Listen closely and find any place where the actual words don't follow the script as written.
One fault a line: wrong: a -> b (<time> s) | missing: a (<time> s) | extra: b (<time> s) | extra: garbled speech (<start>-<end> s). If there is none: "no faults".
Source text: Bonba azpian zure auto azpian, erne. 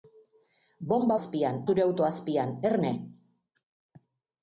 no faults